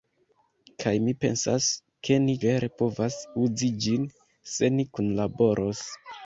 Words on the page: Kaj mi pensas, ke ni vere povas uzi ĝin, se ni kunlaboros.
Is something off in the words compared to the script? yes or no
no